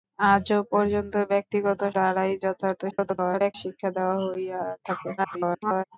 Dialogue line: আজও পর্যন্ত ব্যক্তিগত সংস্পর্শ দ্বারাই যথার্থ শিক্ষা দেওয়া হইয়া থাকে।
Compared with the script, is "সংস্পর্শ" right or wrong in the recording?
wrong